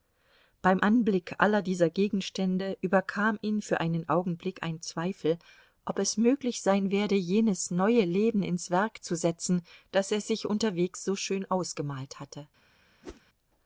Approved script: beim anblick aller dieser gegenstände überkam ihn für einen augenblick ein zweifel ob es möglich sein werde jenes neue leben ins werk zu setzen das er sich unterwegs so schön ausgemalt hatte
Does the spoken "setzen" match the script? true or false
true